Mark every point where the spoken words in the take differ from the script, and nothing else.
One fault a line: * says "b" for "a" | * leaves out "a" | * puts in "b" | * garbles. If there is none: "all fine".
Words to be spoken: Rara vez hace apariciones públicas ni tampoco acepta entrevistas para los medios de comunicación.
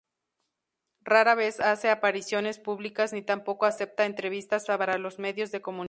all fine